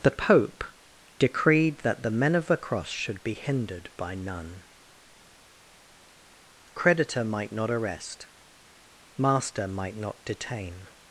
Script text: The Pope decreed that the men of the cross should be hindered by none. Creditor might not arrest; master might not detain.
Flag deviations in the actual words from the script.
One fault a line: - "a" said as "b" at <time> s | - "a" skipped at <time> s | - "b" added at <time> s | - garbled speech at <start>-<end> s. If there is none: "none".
none